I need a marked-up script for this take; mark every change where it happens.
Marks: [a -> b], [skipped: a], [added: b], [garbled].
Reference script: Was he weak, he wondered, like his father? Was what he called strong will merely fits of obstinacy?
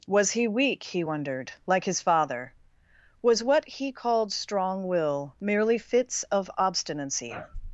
Was he weak, he wondered, like his father? Was what he called strong will merely fits of obstinacy?